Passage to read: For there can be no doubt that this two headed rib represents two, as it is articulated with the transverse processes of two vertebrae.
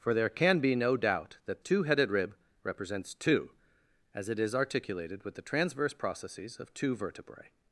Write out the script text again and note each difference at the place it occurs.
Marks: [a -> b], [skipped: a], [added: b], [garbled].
For there can be no doubt that [skipped: this] two headed rib represents two, as it is articulated with the transverse processes of two vertebrae.